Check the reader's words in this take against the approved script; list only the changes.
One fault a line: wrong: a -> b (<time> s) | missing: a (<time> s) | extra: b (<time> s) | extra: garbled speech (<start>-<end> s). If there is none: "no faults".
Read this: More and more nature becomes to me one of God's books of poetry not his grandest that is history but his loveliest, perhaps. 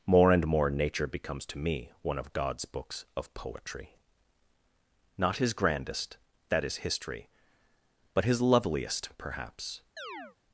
no faults